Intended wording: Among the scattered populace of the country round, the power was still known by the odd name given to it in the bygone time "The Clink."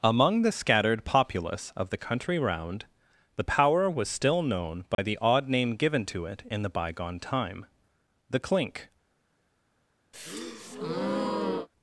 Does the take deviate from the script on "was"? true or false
false